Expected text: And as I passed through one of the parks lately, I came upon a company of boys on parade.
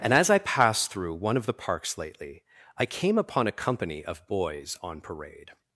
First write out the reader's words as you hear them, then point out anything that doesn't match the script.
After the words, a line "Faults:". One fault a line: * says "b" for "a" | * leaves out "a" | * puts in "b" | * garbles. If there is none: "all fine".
And as I passed through one of the parks lately, I came upon a company of boys on parade.
Faults:
all fine